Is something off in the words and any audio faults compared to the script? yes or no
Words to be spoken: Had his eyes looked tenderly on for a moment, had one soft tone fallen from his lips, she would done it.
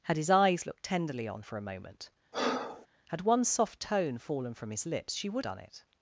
yes